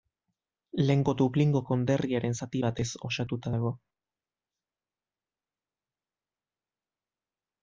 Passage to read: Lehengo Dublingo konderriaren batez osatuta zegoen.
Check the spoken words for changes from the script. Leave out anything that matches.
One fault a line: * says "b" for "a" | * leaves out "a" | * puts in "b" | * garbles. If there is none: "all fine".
* puts in "zati"
* says "dago" for "zegoen"